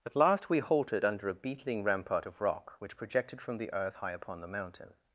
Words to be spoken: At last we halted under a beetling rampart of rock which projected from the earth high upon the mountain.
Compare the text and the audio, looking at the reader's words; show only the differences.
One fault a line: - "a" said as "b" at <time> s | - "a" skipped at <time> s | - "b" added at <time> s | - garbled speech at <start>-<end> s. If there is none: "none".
none